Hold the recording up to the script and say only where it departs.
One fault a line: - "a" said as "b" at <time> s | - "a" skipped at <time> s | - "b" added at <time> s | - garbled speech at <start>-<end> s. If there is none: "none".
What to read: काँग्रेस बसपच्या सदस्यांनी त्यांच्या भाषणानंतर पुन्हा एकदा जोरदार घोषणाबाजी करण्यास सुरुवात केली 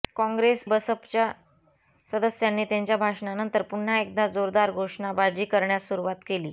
none